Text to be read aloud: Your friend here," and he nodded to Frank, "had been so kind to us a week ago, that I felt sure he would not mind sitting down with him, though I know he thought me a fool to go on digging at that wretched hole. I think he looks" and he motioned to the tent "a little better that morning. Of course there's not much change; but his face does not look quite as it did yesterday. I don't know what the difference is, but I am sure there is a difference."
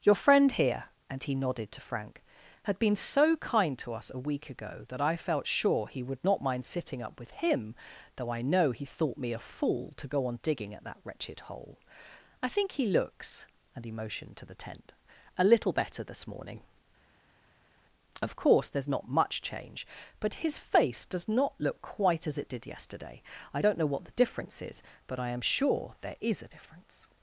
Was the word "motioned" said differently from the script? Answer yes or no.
no